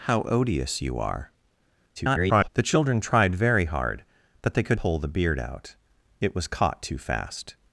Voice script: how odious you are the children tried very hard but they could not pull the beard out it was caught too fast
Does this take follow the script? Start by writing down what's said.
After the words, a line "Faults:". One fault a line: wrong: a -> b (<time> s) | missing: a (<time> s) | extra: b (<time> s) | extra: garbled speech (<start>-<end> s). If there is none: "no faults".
how odious you are [garbled] the children tried very hard but they could pull the beard out it was caught too fast
Faults:
extra: garbled speech (2.0-2.5 s)
missing: not (4.8 s)